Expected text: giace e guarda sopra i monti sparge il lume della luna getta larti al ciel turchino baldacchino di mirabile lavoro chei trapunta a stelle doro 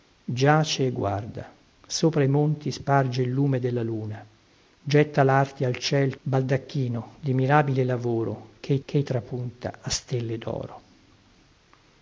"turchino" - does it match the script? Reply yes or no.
no